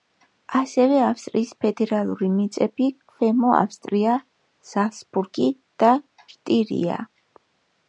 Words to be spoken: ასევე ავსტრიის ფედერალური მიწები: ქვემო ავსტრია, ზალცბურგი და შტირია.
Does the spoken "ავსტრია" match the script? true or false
true